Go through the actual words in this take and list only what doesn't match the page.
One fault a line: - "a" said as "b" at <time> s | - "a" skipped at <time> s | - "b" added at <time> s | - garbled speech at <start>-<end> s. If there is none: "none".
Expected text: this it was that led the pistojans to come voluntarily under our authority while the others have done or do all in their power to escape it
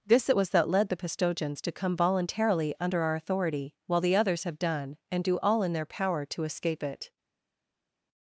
- "or" said as "and" at 5.1 s